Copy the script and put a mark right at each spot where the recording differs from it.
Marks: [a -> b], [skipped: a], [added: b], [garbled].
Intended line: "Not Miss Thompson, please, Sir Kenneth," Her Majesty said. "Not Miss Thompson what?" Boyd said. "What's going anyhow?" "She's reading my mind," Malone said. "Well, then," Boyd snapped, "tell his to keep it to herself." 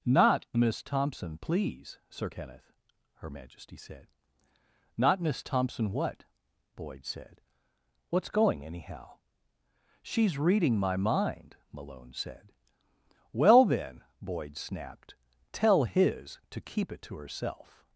"Not Miss Thompson, please, Sir Kenneth," Her Majesty said. "Not Miss Thompson what?" Boyd said. "What's going anyhow?" "She's reading my mind," Malone said. "Well, then," Boyd snapped, "tell his to keep it to herself."